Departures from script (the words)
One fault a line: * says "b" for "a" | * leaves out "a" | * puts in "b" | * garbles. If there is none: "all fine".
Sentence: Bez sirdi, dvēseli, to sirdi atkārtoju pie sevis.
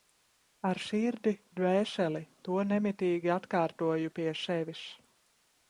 * says "Ar" for "Bez"
* says "nemitīgi" for "sirdi"